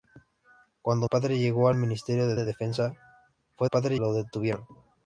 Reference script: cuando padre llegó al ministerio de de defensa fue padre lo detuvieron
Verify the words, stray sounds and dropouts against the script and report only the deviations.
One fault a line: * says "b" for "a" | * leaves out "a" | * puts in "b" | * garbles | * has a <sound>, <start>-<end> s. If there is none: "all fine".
all fine